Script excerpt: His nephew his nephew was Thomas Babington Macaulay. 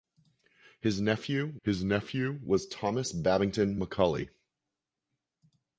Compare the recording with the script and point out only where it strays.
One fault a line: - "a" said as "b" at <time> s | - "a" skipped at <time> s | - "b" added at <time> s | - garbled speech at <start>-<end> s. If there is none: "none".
none